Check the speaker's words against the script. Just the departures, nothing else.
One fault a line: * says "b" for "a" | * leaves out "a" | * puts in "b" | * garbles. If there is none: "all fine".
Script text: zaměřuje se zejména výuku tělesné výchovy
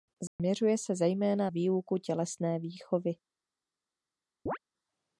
all fine